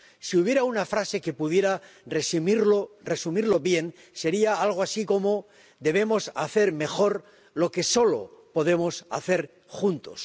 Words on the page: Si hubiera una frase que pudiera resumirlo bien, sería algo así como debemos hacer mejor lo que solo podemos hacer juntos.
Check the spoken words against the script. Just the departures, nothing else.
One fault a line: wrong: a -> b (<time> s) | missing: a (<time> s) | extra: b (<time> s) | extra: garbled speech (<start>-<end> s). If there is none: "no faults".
no faults